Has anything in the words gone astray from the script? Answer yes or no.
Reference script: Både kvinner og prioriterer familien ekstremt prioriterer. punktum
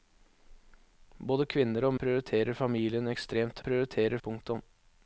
no